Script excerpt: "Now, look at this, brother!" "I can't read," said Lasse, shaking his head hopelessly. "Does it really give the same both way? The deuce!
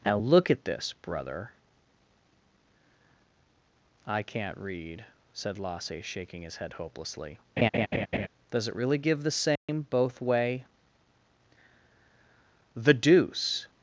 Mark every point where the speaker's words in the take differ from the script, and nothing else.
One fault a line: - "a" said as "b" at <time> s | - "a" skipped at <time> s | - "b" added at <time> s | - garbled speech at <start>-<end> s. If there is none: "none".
none